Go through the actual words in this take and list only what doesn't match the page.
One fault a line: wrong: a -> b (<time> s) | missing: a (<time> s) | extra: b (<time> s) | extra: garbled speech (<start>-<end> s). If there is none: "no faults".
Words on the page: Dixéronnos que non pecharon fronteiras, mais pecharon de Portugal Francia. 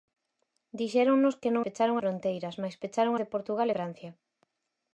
no faults